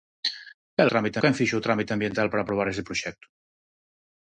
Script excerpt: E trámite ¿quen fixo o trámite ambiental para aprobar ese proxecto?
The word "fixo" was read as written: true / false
true